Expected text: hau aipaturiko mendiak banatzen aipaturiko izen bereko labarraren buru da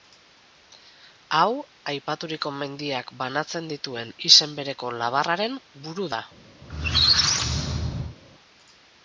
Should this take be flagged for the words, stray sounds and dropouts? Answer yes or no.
yes